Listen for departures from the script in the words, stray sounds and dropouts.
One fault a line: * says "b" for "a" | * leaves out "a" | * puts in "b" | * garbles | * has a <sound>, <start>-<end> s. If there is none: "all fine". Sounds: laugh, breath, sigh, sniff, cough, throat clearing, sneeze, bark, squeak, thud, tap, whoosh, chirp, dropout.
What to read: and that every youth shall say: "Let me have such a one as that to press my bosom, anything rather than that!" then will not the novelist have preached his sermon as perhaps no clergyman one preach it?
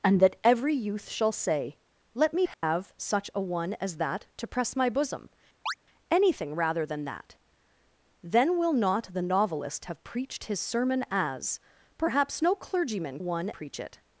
* has a dropout, 2.5-2.6 s
* has a chirp, 5.7-5.7 s